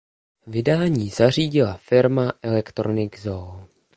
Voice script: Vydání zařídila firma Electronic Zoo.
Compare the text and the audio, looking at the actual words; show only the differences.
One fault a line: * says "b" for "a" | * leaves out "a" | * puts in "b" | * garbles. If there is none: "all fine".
all fine